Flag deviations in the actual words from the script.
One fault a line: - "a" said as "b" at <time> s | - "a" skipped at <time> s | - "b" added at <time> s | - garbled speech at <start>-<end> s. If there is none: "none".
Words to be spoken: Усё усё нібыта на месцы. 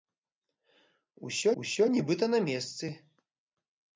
none